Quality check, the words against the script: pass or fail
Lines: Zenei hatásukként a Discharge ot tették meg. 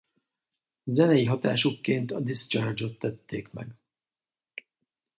pass